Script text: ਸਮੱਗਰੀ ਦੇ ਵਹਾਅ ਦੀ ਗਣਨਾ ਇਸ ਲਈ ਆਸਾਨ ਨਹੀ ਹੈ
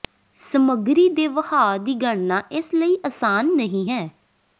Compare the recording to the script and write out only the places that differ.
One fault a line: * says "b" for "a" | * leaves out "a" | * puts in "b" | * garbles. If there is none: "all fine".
all fine